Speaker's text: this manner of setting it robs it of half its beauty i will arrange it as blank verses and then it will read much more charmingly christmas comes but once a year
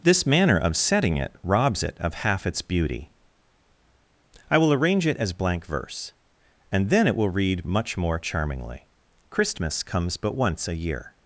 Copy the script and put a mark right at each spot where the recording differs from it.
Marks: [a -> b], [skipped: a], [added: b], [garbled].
this manner of setting it robs it of half its beauty i will arrange it as blank [verses -> verse] and then it will read much more charmingly christmas comes but once a year